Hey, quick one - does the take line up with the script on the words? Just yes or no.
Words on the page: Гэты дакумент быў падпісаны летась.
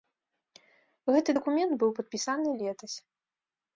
yes